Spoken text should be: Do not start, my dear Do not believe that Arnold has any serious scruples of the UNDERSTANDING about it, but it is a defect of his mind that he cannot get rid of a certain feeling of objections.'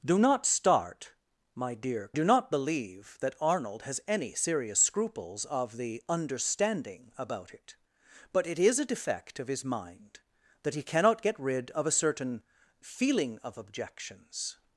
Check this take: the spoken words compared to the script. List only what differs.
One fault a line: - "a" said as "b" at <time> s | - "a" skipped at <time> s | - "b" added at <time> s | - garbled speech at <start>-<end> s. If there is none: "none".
none